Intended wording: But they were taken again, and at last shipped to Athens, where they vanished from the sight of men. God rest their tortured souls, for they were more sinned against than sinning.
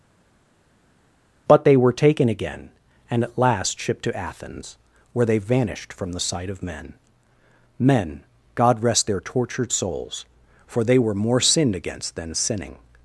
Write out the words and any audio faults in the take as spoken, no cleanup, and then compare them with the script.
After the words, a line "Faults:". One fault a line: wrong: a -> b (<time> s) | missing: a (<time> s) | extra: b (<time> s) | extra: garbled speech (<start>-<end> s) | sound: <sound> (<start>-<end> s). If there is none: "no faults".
But they were taken again, and at last shipped to Athens, where they vanished from the sight of men men. God rest their tortured souls, for they were more sinned against than sinning.
Faults:
extra: men (7.8 s)